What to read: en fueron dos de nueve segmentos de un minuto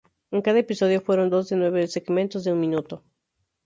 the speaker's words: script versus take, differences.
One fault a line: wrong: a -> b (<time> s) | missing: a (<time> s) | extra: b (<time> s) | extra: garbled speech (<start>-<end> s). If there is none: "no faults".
extra: cada episodio (0.4 s)